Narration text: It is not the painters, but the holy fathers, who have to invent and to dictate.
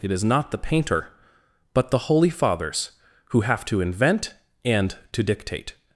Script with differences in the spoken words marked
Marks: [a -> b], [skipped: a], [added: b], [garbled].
It is not the [painters, -> painter] but the holy fathers, who have to invent and to dictate.